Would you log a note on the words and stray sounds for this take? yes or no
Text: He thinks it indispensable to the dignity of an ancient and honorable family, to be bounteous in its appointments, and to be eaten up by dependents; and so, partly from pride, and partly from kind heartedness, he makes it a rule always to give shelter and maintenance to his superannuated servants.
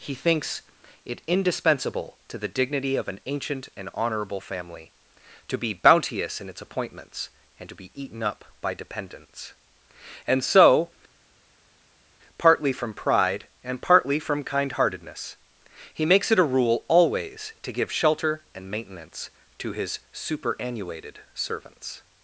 no